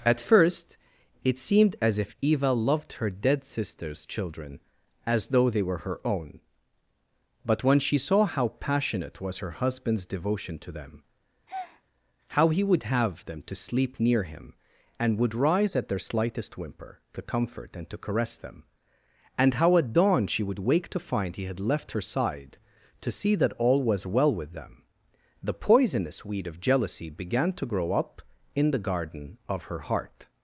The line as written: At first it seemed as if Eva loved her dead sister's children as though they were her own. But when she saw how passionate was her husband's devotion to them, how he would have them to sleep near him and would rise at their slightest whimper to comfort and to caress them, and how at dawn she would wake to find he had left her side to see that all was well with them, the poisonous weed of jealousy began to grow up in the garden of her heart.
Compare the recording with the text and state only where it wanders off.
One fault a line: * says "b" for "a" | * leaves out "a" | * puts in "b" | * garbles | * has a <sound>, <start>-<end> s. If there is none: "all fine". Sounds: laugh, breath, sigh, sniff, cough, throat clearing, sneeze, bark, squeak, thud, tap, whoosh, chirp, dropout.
* has a breath, 11.5-11.8 s